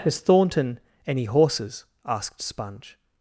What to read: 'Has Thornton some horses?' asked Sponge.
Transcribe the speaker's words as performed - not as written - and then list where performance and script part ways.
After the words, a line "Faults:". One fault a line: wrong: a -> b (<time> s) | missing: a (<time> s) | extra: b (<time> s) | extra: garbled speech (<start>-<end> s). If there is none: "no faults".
'Has Thornton any horses?' asked Sponge.
Faults:
wrong: some -> any (1.1 s)